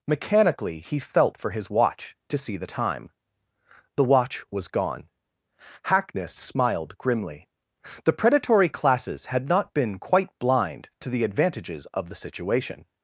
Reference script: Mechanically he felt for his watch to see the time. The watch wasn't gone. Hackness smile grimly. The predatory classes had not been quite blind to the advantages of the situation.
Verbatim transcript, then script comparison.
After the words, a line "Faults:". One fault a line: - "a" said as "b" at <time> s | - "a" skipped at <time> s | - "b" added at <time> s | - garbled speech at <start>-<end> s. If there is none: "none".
Mechanically he felt for his watch to see the time. The watch was gone. Hackness smiled grimly. The predatory classes had not been quite blind to the advantages of the situation.
Faults:
- "wasn't" said as "was" at 4.5 s
- "smile" said as "smiled" at 6.3 s